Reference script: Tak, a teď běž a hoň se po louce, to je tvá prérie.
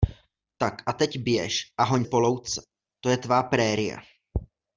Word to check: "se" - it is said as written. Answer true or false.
false